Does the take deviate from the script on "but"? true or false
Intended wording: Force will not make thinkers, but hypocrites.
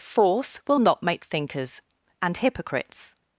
true